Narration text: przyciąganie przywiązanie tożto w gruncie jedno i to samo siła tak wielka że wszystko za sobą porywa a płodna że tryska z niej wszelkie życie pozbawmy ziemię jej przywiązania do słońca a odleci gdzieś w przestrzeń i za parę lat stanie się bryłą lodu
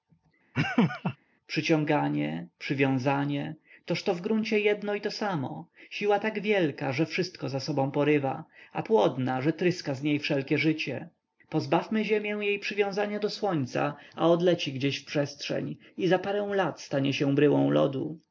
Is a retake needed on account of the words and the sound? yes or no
yes